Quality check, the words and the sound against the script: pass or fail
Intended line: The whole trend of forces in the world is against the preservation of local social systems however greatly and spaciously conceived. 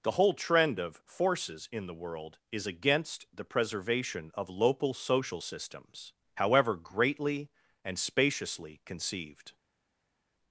pass